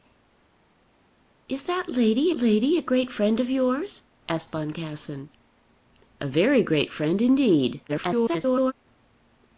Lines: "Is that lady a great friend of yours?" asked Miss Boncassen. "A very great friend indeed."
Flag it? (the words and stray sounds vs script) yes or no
yes